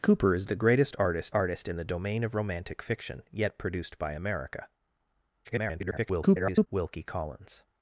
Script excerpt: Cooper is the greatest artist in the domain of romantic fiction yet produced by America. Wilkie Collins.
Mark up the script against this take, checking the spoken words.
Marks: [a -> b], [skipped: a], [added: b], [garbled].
Cooper is the greatest artist [added: artist] in the domain of romantic fiction yet produced by America. [garbled] Wilkie Collins.